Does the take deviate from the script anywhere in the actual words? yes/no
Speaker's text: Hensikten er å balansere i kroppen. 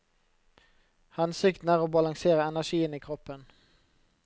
yes